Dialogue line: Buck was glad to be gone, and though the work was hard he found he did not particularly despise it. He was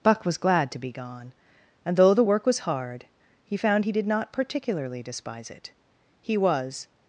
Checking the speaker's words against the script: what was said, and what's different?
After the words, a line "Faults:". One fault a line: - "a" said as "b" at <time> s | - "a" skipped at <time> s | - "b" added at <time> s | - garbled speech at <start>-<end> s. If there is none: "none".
Buck was glad to be gone, and though the work was hard he found he did not particularly despise it. He was
Faults:
none